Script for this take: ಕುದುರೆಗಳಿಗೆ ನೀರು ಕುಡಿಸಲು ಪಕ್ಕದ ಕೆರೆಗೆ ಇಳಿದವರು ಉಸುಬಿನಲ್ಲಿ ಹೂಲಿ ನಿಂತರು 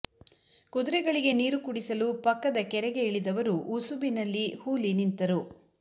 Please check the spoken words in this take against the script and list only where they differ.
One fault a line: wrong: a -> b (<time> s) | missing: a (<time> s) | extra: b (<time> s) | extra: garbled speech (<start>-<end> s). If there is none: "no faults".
no faults